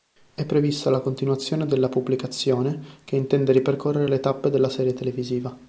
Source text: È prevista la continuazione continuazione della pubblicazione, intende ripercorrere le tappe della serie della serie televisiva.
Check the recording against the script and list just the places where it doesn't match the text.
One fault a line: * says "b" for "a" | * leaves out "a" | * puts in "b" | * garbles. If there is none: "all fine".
* leaves out "continuazione"
* puts in "che"
* leaves out "della serie"